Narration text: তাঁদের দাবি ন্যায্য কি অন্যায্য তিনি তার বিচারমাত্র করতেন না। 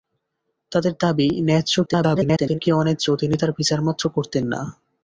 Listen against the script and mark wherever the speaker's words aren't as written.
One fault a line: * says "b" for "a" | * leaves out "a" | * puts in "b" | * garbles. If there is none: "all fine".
* garbles